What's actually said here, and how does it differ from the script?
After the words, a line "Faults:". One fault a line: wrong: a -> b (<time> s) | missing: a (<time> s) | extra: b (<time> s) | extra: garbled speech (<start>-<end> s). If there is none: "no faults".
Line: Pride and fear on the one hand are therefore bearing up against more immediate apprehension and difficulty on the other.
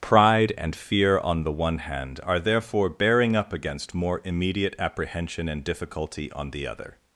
Pride and fear on the one hand are therefore bearing up against more immediate apprehension and difficulty on the other.
Faults:
no faults